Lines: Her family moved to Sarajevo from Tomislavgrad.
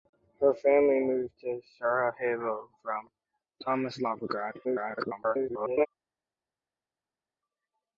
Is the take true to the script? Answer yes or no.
no